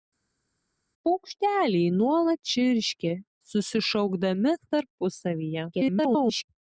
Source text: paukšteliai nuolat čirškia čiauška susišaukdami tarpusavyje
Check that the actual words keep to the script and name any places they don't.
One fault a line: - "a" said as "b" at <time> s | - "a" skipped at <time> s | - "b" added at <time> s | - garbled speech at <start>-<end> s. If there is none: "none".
- "čiauška" skipped at 3.1 s
- garbled speech at 5.7-6.4 s